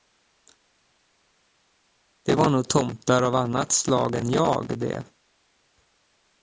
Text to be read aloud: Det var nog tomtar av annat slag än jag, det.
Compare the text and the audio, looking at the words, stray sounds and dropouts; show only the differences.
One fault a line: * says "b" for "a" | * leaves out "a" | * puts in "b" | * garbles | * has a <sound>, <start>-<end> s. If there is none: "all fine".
all fine